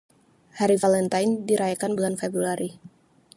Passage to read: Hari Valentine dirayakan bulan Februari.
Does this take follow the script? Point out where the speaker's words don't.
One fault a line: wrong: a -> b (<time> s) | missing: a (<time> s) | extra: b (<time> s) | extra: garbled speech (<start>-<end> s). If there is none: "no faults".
no faults